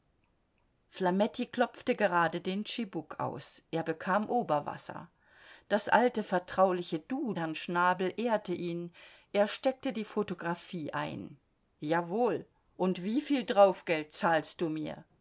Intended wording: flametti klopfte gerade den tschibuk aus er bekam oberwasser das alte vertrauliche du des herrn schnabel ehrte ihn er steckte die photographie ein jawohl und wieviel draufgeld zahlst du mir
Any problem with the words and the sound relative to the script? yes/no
yes